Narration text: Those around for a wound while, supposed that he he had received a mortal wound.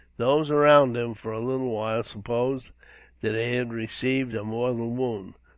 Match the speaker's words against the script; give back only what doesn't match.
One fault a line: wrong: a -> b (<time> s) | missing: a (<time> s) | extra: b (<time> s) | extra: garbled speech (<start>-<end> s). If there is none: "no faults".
extra: him (1.0 s)
wrong: wound -> little (1.4 s)
missing: he (3.5 s)